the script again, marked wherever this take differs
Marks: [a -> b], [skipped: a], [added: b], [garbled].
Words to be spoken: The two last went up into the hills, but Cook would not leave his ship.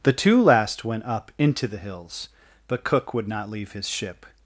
The two last went up into the hills, but Cook would not leave his ship.